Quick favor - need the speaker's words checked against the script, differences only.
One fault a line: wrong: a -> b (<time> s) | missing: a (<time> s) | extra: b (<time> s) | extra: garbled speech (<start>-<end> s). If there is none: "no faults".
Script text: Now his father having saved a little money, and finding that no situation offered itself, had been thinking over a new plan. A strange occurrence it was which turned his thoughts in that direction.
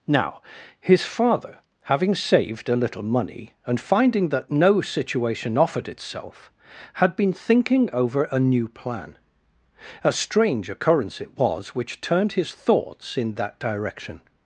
no faults